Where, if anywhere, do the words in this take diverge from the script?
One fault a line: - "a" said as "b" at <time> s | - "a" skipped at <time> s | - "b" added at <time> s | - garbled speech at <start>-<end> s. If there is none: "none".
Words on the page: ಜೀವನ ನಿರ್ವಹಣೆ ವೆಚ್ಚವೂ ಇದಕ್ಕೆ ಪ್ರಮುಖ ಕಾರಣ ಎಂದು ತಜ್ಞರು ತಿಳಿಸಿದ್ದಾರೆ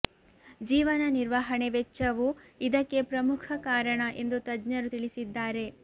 none